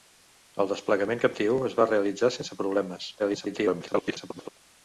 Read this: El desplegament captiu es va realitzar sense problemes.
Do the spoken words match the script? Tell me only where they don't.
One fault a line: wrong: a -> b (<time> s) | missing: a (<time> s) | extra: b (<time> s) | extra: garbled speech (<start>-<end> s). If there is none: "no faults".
extra: garbled speech (3.2-4.5 s)